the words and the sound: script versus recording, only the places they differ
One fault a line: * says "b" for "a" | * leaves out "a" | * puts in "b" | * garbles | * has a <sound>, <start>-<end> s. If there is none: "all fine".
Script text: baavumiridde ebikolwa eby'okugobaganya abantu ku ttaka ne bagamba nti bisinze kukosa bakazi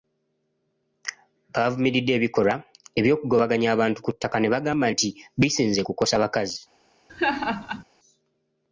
* has a laugh, 7.1-7.8 s